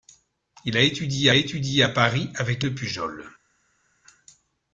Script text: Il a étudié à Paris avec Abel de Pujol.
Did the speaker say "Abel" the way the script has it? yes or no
no